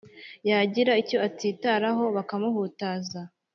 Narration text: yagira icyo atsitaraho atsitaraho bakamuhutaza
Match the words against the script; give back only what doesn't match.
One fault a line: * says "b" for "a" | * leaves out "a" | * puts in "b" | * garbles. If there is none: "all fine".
* leaves out "atsitaraho"